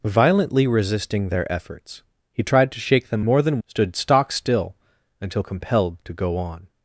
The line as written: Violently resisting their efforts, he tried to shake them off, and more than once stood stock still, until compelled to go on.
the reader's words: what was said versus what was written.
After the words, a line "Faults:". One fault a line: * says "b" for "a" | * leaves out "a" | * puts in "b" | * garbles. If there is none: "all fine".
Violently resisting their efforts, he tried to shake them more than stood stock still, until compelled to go on.
Faults:
* leaves out "off and"
* leaves out "once"